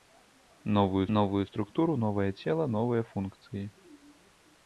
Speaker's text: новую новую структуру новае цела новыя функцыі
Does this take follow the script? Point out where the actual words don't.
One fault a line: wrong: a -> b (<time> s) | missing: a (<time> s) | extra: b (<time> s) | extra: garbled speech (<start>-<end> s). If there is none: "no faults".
no faults